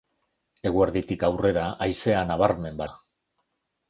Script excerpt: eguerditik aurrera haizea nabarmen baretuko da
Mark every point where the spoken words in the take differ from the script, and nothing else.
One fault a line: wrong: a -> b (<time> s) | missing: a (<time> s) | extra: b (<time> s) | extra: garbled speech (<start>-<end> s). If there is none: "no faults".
missing: baretuko (2.8 s)